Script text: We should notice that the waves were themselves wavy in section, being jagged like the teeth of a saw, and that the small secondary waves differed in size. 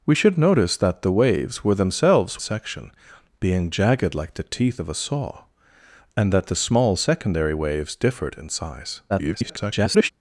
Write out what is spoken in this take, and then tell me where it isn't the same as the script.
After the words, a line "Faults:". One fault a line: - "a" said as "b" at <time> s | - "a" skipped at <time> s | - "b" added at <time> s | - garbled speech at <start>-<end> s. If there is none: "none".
We should notice that the waves were themselves section, being jagged like the teeth of a saw, and that the small secondary waves differed in size. [garbled]
Faults:
- "wavy in" skipped at 2.4 s
- garbled speech at 9.1-10.1 s